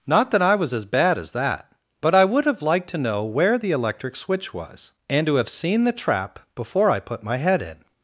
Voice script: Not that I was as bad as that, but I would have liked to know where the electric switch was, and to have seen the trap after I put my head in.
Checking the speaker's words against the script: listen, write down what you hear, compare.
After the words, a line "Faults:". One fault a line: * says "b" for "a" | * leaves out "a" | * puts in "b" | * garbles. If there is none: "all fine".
Not that I was as bad as that, but I would have liked to know where the electric switch was, and to have seen the trap before I put my head in.
Faults:
* says "before" for "after"